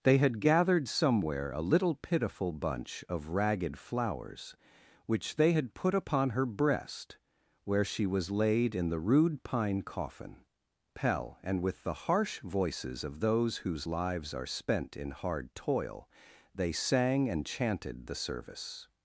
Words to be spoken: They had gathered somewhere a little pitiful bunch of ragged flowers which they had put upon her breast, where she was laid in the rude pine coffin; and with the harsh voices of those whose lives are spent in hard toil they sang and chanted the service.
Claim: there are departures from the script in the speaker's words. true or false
true